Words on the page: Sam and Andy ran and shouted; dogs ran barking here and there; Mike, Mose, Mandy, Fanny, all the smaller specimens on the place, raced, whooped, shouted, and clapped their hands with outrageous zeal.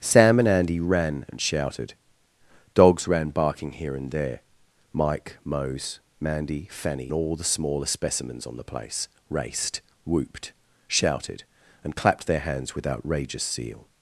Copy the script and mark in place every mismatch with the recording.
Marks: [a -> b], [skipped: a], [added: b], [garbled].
Sam and Andy ran and shouted; dogs ran barking here and there; Mike, Mose, Mandy, Fanny, all the smaller specimens on the place, raced, whooped, shouted, and clapped their hands with outrageous zeal.